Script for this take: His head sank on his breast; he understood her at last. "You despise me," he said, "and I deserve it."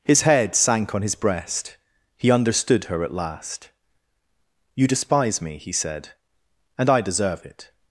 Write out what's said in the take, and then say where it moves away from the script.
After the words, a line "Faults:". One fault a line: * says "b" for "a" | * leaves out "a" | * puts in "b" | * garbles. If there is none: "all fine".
His head sank on his breast; he understood her at last. "You despise me," he said, "and I deserve it."
Faults:
all fine